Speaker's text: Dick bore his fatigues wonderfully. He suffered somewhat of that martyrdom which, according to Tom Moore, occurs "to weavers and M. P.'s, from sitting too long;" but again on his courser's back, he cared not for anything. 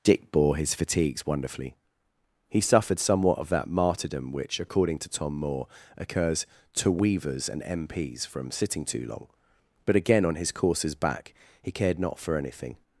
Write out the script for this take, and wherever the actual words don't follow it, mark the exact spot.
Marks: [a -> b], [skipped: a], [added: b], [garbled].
Dick bore his fatigues wonderfully. He suffered somewhat of that martyrdom which, according to Tom Moore, occurs "to weavers and M. P.'s, from sitting too long;" but again on his courser's back, he cared not for anything.